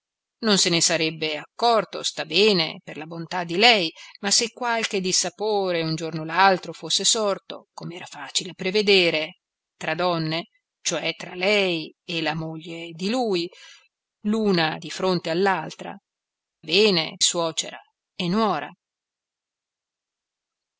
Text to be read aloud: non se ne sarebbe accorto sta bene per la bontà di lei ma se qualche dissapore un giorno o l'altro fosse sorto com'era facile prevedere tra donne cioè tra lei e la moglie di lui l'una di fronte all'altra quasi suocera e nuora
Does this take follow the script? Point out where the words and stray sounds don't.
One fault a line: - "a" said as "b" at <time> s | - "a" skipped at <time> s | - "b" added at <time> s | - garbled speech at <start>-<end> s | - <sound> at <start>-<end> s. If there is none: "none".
- "quasi" said as "bene" at 16.6 s